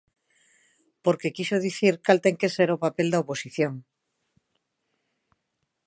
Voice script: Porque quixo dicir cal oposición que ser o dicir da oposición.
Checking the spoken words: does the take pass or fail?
fail